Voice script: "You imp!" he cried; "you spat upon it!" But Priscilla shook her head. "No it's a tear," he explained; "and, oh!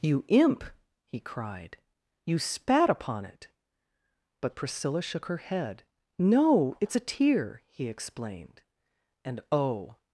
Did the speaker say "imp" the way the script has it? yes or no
yes